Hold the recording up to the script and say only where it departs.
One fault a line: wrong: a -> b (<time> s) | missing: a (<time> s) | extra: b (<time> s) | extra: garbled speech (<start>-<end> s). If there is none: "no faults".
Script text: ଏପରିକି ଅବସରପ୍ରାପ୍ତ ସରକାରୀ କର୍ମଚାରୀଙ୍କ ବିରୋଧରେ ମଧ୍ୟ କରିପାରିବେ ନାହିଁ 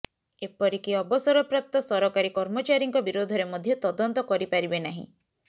extra: ତଦନ୍ତ (3.9 s)